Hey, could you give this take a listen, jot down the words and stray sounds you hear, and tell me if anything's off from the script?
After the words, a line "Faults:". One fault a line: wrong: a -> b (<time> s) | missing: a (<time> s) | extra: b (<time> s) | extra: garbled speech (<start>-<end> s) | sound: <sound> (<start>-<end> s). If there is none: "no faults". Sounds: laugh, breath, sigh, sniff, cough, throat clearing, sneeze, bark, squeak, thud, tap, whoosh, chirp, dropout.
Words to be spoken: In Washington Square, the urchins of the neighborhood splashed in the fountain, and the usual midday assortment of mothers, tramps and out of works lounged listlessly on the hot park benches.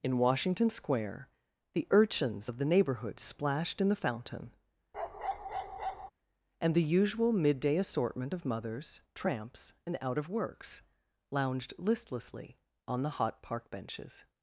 In Washington Square, the urchins of the neighborhood splashed in the fountain, and the usual midday assortment of mothers, tramps and out of works lounged listlessly on the hot park benches.
Faults:
sound: bark (4.9-6.1 s)